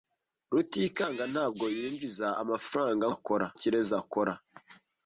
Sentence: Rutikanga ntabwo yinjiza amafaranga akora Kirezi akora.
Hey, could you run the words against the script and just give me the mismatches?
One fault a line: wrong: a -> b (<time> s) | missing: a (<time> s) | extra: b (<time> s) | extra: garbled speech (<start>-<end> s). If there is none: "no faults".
no faults